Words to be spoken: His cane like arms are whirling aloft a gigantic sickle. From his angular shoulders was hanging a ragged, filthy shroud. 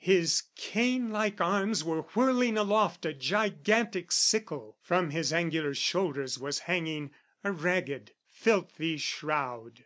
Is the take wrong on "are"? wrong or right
wrong